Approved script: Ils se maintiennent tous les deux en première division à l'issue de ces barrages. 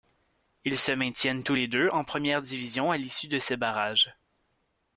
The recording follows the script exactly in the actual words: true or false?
true